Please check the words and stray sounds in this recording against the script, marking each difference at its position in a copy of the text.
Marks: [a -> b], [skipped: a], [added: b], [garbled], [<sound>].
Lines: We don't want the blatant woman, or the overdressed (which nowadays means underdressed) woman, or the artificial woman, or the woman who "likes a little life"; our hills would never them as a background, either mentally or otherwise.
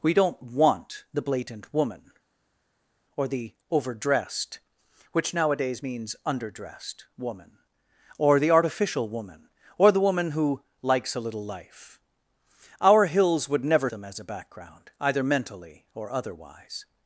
We don't want the blatant woman, or the overdressed (which nowadays means underdressed) woman, or the artificial woman, or the woman who "likes a little life"; our hills would never them as a background, either mentally or otherwise.